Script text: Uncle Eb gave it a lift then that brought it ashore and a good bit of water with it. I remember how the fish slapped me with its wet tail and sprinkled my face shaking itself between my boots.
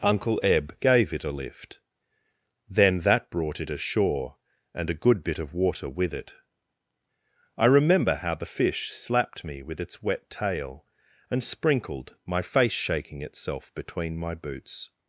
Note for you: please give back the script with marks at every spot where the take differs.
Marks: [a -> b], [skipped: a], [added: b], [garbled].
Uncle Eb gave it a lift then that brought it ashore and a good bit of water with it. I remember how the fish slapped me with its wet tail and sprinkled my face shaking itself between my boots.